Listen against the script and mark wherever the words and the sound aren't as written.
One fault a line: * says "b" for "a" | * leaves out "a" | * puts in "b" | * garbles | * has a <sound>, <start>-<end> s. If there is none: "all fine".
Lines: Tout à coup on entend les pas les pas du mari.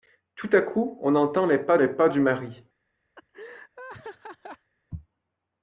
* has a laugh, 3.2-4.7 s